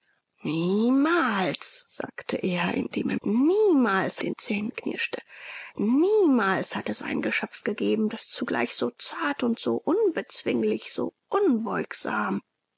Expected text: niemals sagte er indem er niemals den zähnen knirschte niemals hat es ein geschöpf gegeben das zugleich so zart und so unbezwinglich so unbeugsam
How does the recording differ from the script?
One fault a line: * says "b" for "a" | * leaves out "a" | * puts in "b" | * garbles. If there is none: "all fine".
all fine